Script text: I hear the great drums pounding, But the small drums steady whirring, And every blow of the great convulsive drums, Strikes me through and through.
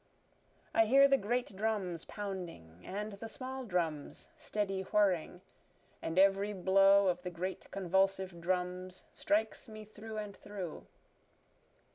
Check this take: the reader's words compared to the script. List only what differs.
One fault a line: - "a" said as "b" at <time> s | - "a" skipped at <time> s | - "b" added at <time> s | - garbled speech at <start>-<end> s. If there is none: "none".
- "But" said as "And" at 2.9 s